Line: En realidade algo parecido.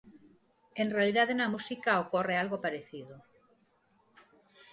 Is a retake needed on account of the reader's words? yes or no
yes